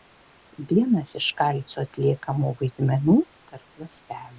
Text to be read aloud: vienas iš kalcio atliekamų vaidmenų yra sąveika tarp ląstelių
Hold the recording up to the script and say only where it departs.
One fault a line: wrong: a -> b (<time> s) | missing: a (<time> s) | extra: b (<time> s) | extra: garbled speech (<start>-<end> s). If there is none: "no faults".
missing: yra sąveika (3.2 s)